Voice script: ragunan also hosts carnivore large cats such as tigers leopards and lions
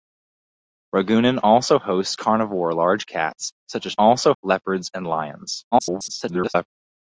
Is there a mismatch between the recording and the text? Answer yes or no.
yes